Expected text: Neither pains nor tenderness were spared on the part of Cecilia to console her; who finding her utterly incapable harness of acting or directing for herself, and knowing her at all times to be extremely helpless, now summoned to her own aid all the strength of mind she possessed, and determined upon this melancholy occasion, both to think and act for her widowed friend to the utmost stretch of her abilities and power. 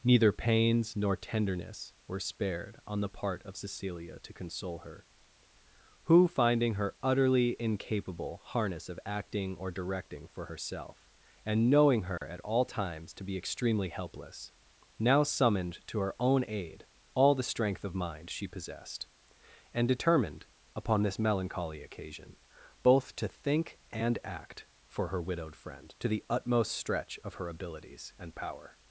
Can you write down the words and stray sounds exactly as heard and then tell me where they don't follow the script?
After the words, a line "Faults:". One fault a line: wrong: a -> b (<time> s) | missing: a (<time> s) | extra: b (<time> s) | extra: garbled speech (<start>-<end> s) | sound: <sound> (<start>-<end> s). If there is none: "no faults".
Neither pains nor tenderness were spared on the part of Cecilia to console her; who finding her utterly incapable harness of acting or directing for herself, and knowing her at all times to be extremely helpless, now summoned to her own aid all the strength of mind she possessed, and determined upon this melancholy occasion, both to think and act for her widowed friend to the utmost stretch of her abilities and power.
Faults:
sound: dropout (12.2-12.2 s)